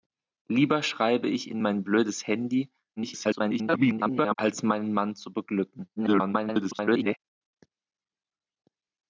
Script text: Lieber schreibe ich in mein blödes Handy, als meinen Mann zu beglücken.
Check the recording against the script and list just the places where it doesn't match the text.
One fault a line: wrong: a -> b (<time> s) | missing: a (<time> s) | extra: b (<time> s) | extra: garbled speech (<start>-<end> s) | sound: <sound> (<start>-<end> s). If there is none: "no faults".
extra: garbled speech (3.0-4.3 s)
extra: garbled speech (6.0-7.2 s)